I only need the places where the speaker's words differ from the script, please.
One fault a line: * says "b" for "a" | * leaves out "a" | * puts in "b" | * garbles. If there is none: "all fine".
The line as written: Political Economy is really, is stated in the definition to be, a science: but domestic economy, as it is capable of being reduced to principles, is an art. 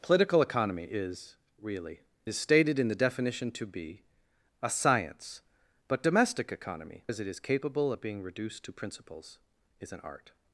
all fine